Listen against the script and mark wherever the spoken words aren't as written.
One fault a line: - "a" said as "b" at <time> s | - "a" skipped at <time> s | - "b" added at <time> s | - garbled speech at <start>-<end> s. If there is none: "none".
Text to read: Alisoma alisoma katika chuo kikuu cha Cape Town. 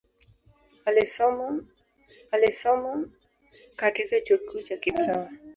none